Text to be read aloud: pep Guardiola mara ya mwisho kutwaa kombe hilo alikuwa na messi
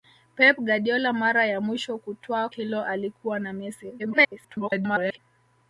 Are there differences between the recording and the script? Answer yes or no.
yes